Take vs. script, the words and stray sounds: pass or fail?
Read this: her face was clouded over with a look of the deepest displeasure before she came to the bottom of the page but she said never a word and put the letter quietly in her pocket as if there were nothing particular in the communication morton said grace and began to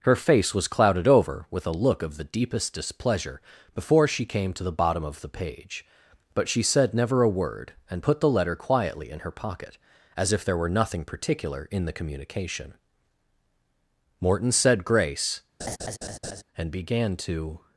fail